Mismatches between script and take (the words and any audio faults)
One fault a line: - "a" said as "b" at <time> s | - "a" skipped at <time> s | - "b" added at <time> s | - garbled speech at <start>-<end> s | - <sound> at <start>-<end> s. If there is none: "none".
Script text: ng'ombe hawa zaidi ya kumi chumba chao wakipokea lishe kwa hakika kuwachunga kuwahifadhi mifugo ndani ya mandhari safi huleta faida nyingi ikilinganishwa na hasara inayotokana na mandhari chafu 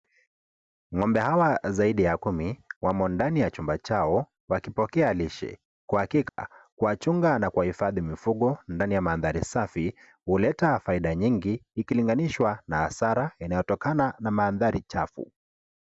- "wamo ndani ya" added at 2.8 s
- dropout at 6.3-6.4 s
- "na" added at 7.4 s